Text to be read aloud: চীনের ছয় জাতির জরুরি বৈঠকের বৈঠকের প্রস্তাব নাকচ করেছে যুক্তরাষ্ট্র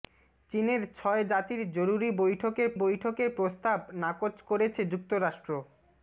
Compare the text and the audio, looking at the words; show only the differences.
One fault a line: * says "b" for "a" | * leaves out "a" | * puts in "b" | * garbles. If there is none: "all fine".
all fine